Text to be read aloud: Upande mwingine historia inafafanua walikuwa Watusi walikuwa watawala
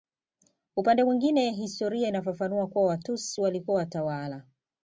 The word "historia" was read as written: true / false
true